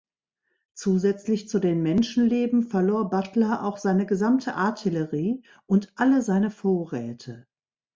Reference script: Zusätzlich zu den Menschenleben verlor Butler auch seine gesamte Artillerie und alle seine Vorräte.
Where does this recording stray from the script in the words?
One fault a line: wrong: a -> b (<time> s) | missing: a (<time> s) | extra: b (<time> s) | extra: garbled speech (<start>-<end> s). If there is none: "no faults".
no faults